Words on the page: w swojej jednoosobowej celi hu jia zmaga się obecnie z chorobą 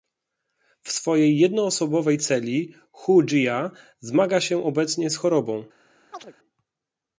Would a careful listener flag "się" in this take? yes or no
no